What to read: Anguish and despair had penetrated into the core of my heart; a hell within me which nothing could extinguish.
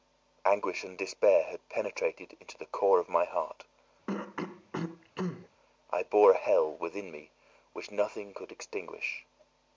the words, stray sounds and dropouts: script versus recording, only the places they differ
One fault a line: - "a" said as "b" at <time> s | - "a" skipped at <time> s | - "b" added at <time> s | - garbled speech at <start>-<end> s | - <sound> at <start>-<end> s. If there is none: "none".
- throat clearing at 4.1-5.5 s
- "I bore" added at 5.9 s